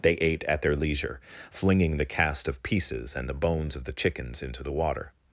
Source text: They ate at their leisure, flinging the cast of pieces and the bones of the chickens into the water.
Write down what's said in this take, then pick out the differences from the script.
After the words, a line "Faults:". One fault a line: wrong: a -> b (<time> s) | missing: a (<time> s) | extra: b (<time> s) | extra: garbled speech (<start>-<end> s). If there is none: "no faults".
They ate at their leisure, flinging the cast of pieces and the bones of the chickens into the water.
Faults:
no faults